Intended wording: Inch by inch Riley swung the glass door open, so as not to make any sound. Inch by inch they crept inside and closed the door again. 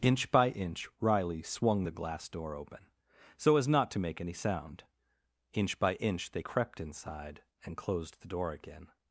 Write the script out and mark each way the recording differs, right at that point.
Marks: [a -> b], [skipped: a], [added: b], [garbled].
Inch by inch Riley swung the glass door open, so as not to make any sound. Inch by inch they crept inside and closed the door again.